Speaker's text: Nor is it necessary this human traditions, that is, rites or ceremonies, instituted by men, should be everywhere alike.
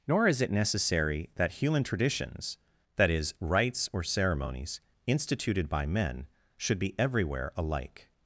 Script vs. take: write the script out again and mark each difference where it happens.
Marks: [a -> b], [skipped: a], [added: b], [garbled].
Nor is it necessary [this -> that] human traditions, that is, rites or ceremonies, instituted by men, should be everywhere alike.